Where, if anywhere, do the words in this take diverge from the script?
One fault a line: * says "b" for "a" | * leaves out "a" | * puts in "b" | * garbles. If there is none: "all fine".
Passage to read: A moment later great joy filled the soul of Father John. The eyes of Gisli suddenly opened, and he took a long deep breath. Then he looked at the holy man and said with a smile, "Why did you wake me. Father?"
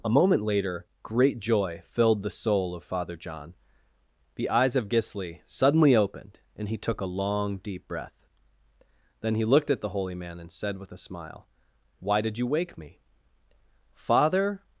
all fine